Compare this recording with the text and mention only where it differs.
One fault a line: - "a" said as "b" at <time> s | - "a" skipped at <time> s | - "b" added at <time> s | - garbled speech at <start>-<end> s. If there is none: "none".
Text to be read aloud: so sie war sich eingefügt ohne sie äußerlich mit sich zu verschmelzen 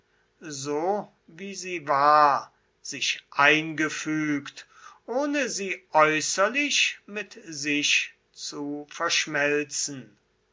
- "wie" added at 1.3 s